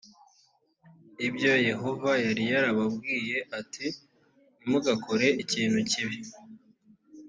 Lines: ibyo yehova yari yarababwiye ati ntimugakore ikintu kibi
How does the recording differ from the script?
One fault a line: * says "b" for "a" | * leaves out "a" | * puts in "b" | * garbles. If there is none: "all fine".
all fine